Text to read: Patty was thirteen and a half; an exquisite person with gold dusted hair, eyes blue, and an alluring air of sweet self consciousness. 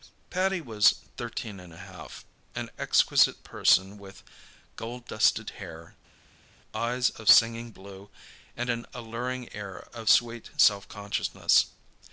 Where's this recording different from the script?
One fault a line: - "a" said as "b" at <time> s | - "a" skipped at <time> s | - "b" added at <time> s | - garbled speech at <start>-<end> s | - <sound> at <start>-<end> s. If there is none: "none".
- "of singing" added at 7.1 s